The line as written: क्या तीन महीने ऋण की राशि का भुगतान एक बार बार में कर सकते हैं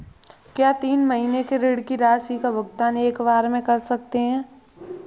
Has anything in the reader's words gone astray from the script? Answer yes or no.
yes